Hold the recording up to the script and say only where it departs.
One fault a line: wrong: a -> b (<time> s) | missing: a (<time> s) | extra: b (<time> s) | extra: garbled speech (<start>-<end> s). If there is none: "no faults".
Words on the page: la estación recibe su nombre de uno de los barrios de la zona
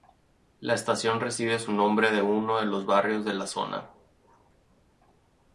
no faults